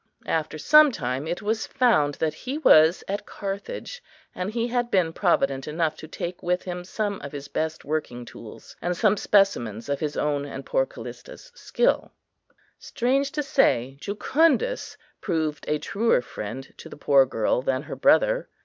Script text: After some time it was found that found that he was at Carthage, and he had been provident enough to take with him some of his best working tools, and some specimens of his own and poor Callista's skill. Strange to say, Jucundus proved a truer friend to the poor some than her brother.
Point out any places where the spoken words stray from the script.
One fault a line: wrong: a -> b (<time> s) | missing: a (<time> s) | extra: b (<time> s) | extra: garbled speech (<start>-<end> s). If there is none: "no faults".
missing: found that (2.3 s)
wrong: some -> girl (17.3 s)